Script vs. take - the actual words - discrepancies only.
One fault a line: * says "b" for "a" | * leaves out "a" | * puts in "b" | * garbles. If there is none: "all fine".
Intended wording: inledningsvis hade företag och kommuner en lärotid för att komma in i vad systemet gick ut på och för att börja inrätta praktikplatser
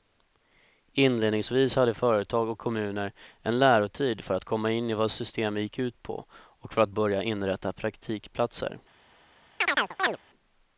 all fine